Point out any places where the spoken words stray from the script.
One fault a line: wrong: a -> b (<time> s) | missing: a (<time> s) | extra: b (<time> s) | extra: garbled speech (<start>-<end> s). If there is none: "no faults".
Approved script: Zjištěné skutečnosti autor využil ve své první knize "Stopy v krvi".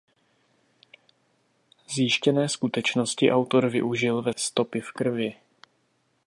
missing: své první knize (4.3 s)